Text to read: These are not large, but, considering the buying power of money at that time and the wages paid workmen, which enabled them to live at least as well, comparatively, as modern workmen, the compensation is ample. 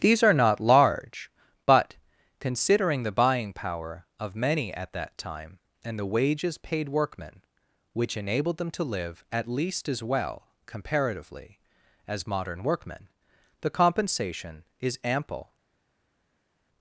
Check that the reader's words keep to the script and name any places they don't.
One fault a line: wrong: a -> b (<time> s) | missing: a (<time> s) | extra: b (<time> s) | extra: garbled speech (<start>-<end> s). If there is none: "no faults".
wrong: money -> many (4.3 s)